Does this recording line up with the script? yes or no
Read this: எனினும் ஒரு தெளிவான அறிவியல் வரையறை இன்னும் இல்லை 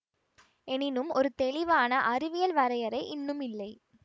yes